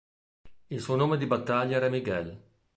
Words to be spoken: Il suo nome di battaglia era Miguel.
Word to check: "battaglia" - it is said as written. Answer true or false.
true